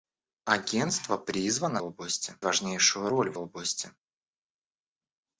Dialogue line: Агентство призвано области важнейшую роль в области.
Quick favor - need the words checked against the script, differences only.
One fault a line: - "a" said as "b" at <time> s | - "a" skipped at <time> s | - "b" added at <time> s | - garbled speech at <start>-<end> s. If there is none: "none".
none